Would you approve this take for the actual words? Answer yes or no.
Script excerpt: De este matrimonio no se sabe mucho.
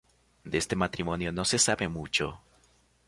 yes